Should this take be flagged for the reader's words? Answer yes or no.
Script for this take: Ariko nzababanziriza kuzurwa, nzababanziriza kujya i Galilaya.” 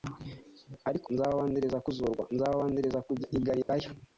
no